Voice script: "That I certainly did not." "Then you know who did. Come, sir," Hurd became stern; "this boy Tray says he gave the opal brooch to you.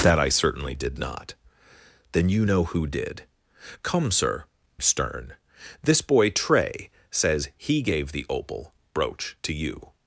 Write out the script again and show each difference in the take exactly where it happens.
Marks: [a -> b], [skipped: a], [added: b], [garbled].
"That I certainly did not." "Then you know who did. Come, sir," [skipped: Hurd became] stern; "this boy Tray says he gave the opal brooch to you.